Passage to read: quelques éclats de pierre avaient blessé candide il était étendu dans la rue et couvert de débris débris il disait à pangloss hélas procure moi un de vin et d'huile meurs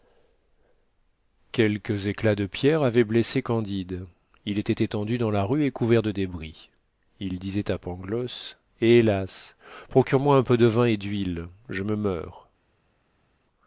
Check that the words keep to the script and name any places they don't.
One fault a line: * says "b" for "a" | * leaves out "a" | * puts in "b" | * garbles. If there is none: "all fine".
* leaves out "débris"
* puts in "peu"
* puts in "je me"